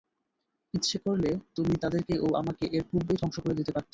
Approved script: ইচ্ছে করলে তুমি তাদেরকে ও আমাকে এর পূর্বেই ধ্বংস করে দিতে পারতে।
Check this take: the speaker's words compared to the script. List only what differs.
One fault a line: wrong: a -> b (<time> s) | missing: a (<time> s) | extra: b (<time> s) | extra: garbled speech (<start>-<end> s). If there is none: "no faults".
no faults